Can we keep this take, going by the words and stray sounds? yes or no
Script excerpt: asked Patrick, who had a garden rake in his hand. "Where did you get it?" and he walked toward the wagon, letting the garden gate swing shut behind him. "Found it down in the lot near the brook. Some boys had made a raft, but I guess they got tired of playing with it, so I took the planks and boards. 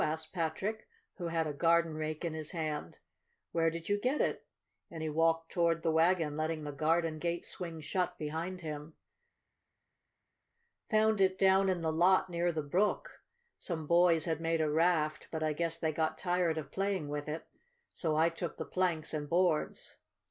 yes